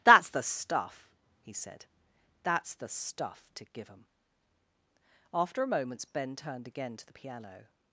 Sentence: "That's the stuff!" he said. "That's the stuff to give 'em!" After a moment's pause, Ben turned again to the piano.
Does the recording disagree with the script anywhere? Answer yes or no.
yes